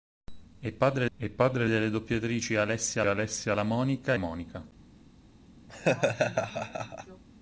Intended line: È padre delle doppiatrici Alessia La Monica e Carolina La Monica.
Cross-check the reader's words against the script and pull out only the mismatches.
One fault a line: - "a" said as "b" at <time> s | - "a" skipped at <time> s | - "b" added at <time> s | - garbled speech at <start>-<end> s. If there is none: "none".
- "è padre" added at 1.2 s
- "Alessia" added at 3.0 s
- "e Carolina La" skipped at 4.1 s